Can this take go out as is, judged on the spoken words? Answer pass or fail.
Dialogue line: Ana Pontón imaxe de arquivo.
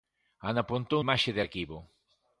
pass